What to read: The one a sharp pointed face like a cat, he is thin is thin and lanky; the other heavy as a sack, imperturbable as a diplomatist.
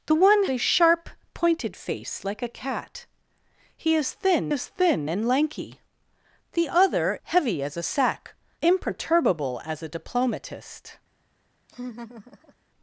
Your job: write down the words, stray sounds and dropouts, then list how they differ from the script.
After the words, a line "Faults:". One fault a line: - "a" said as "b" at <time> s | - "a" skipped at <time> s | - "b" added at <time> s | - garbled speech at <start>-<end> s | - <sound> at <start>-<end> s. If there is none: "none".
The one a sharp pointed face like a cat, he is thin is thin and lanky; the other heavy as a sack, imperturbable as a diplomatist.
Faults:
- laugh at 11.7-12.5 s